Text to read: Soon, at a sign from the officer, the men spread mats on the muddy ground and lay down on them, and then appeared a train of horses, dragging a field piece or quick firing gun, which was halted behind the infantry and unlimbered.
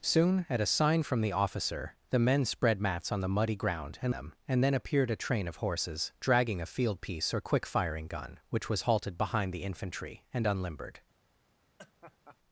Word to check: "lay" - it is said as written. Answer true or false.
false